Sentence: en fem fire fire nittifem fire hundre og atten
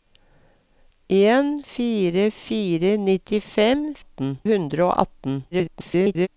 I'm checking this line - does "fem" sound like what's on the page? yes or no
no